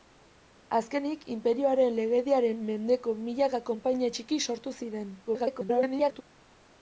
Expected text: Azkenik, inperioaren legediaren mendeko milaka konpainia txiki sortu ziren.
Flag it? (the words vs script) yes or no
yes